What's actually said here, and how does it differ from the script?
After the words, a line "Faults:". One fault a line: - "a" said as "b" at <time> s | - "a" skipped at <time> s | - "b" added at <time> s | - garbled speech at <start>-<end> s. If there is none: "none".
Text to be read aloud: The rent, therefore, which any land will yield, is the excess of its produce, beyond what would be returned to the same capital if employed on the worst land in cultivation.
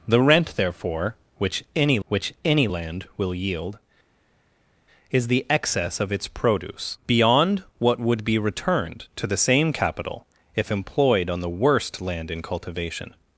The rent, therefore, which any which any land will yield, is the excess of its produce, beyond what would be returned to the same capital if employed on the worst land in cultivation.
Faults:
- "which any" added at 2.1 s